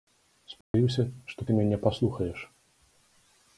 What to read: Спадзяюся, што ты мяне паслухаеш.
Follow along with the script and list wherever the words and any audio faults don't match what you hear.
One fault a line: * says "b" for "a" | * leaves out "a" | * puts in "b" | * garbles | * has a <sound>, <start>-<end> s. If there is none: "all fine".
* has a dropout, 0.6-0.7 s